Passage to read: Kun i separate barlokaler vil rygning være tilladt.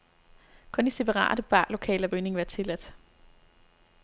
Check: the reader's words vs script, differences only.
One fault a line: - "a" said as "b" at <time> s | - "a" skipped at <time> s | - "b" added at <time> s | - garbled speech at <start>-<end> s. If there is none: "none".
- "vil" skipped at 2.1 s